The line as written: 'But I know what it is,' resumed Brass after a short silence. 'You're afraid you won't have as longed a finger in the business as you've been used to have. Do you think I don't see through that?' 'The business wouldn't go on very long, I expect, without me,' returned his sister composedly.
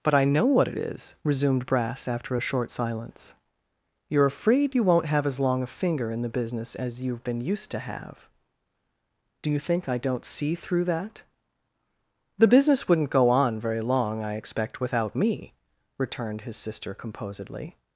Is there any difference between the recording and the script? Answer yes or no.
yes